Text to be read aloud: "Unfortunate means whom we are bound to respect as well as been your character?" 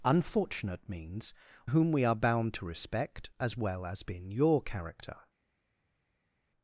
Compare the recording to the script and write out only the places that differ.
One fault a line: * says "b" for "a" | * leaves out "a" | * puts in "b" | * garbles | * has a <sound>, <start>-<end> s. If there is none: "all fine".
all fine